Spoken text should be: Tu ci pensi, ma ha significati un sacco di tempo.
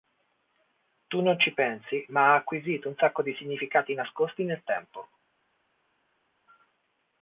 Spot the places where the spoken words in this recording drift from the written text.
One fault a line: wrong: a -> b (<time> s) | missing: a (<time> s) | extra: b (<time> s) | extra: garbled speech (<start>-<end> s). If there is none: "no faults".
extra: non (1.2 s)
wrong: significati -> acquisito (2.4 s)
extra: significati nascosti nel (3.4 s)